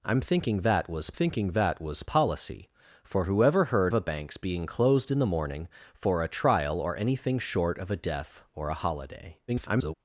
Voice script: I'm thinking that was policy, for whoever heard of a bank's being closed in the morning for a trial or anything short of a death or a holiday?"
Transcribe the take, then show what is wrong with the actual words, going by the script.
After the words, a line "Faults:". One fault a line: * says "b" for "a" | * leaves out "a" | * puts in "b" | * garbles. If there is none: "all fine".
I'm thinking that was thinking that was policy, for whoever heard a bank's being closed in the morning for a trial or anything short of a death or a holiday?" [garbled]
Faults:
* puts in "thinking that was"
* leaves out "of"
* garbles